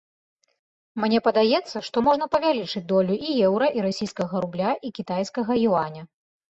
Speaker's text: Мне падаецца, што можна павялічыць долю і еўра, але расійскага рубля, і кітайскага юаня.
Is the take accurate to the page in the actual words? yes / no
no